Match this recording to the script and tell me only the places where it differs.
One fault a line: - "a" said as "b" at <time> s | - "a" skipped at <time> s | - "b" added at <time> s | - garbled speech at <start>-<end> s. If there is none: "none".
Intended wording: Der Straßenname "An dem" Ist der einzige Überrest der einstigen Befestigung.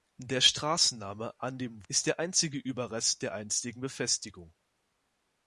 none